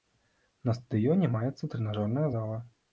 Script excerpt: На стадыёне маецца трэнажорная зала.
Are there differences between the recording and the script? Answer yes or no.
no